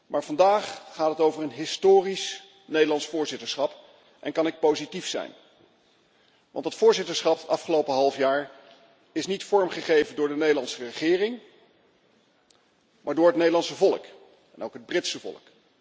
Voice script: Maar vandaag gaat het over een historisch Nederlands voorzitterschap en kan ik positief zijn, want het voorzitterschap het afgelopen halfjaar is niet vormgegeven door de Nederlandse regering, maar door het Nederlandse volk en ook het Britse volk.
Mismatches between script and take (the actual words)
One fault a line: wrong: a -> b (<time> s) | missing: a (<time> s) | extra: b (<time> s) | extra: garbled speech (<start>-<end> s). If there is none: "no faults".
no faults